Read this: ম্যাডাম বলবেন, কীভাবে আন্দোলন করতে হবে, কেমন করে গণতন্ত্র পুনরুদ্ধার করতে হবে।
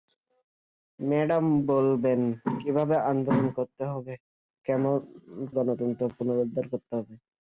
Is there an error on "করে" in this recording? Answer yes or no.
yes